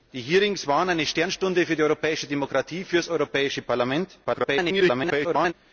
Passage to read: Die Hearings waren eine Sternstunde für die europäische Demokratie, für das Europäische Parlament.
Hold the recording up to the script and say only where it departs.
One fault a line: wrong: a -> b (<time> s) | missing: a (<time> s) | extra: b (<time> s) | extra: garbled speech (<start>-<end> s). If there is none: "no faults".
extra: garbled speech (4.2-5.5 s)